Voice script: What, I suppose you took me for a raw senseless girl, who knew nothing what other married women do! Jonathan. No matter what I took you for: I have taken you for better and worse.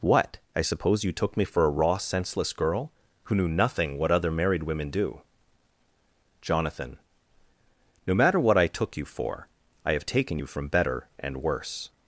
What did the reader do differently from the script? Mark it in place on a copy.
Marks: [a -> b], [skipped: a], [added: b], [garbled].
What, I suppose you took me for a raw senseless girl, who knew nothing what other married women do! Jonathan. No matter what I took you for: I have taken you [for -> from] better and worse.